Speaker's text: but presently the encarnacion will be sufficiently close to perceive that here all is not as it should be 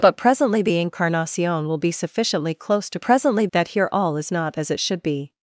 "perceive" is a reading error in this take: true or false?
true